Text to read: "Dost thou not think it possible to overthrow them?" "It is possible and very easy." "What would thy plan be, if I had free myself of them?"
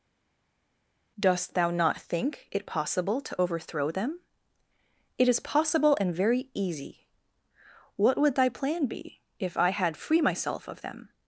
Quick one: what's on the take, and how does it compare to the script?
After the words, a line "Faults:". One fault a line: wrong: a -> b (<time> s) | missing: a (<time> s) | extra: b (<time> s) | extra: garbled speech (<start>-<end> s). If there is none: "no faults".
"Dost thou not think it possible to overthrow them?" "It is possible and very easy." "What would thy plan be, if I had free myself of them?"
Faults:
no faults